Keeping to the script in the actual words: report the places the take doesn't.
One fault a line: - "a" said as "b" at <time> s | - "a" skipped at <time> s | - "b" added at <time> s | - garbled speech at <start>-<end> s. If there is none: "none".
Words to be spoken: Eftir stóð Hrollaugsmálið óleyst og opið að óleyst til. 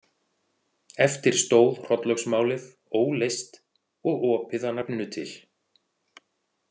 - "óleyst" said as "nafninu" at 4.8 s